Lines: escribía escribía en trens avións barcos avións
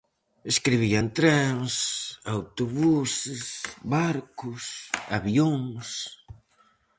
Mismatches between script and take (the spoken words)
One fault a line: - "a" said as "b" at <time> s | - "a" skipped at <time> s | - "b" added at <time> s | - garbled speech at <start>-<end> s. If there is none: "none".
- "escribía" skipped at 1.0 s
- "avións" said as "autobuses" at 2.4 s